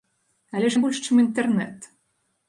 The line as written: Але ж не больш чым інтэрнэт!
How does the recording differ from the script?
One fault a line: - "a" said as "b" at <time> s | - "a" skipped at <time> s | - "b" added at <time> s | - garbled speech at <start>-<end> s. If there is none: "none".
none